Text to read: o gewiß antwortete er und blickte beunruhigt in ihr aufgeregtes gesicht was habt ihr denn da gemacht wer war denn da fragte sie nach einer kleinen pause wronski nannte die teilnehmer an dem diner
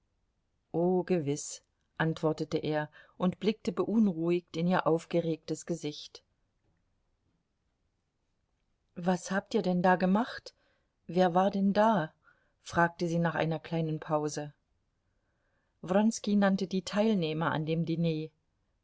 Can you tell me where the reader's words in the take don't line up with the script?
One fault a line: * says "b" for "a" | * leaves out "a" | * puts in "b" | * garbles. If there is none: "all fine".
all fine